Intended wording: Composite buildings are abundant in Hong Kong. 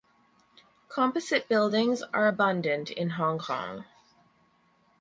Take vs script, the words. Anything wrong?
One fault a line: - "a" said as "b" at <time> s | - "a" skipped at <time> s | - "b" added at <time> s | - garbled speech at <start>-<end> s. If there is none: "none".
none